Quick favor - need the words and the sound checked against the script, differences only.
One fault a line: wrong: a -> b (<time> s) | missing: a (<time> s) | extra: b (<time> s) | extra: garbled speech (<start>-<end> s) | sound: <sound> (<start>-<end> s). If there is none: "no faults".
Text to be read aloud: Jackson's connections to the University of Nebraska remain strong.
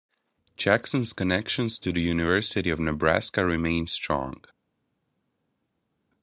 no faults